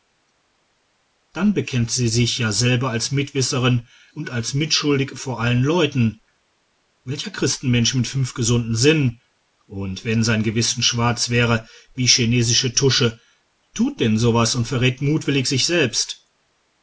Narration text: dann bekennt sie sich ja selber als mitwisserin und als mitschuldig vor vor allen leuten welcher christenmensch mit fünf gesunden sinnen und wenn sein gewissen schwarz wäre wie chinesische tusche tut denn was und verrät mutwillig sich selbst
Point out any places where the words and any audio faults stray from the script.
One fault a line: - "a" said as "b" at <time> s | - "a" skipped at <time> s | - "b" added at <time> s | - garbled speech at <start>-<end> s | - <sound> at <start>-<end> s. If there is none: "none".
- "vor" skipped at 5.4 s
- "so" added at 14.2 s